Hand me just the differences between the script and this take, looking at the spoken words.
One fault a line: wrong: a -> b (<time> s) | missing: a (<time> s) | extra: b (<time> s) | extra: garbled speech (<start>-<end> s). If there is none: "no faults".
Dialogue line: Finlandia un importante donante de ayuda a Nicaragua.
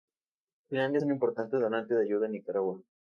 no faults